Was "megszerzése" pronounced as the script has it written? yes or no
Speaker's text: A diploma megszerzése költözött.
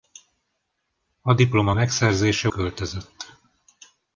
yes